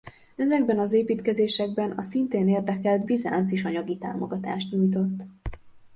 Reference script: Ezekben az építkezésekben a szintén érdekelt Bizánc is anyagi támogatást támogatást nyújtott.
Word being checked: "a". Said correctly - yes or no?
yes